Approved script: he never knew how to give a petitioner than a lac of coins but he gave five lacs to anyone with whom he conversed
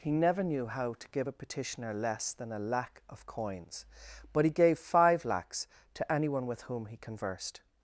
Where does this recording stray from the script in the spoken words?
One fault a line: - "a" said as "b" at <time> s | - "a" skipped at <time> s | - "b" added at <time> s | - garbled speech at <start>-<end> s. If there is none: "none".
- "less" added at 1.9 s